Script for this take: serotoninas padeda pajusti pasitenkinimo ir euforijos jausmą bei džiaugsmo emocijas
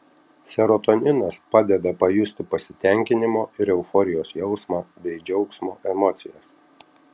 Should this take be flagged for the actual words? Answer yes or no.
no